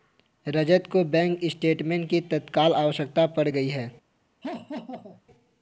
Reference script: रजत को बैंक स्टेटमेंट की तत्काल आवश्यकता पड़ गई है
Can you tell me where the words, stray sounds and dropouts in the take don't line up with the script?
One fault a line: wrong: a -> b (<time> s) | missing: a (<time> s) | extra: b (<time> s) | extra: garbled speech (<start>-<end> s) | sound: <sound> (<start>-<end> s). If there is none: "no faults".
sound: laugh (4.4-5.2 s)